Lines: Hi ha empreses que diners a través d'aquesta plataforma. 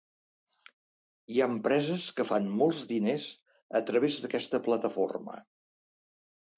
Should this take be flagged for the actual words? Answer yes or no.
yes